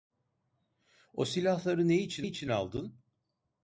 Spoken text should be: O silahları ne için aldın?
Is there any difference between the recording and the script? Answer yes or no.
yes